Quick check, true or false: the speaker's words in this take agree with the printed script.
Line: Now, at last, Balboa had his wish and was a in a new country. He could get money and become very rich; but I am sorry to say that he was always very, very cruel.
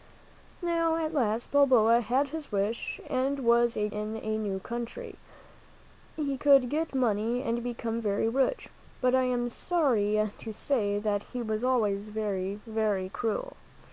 true